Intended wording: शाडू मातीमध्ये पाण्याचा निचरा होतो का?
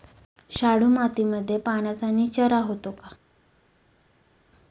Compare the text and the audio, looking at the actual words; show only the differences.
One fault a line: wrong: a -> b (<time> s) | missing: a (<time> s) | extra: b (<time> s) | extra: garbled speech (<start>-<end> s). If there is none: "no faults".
no faults